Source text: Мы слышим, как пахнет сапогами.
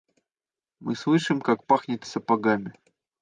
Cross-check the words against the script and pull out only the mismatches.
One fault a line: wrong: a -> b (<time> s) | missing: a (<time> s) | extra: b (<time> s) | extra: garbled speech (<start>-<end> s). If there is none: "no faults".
no faults